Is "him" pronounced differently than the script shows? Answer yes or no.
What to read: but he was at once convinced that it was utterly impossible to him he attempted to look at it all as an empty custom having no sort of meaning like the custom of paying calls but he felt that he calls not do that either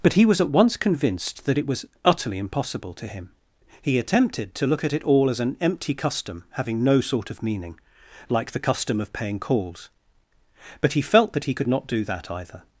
no